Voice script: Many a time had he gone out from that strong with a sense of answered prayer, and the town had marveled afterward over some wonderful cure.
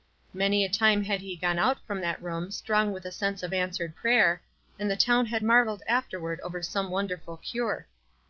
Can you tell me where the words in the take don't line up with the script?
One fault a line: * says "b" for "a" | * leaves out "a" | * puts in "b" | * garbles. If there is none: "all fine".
* puts in "room"